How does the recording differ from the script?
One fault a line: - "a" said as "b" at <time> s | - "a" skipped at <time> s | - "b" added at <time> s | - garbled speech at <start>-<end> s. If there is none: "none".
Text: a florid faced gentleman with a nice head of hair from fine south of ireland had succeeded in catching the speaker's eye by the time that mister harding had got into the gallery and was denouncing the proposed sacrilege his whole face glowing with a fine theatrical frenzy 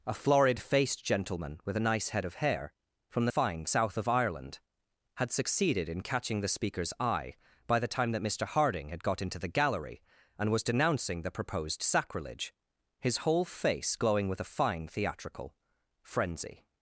none